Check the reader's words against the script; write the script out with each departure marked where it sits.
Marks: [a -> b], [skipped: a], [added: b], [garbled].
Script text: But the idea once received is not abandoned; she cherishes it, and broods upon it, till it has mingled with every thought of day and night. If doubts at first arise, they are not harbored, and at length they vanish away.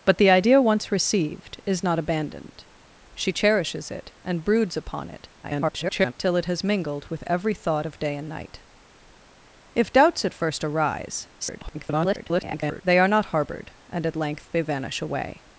But the idea once received is not abandoned; she cherishes it, and broods upon it, [garbled] till it has mingled with every thought of day and night. If doubts at first arise, [garbled] they are not harbored, and at length they vanish away.